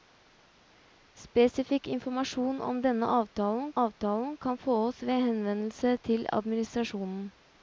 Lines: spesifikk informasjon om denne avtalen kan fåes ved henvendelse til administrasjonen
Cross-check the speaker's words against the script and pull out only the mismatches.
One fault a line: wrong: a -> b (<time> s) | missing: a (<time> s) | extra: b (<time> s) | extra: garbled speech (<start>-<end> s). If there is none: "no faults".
extra: avtalen (3.8 s)